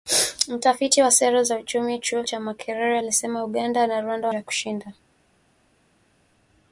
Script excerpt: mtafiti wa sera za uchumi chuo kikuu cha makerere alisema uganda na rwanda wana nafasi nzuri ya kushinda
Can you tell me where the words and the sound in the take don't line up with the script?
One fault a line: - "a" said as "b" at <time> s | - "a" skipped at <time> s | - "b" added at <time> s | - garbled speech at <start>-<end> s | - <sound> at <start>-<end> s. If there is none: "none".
- "kikuu" skipped at 2.2 s
- "wana nafasi nzuri" skipped at 4.3 s